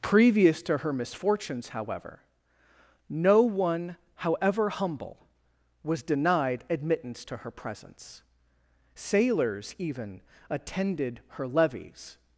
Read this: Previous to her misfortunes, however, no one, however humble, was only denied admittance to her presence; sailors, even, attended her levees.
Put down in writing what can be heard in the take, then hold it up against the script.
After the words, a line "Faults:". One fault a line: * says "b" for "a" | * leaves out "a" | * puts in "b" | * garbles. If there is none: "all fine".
Previous to her misfortunes, however, no one, however humble, was denied admittance to her presence; sailors, even, attended her levees.
Faults:
* leaves out "only"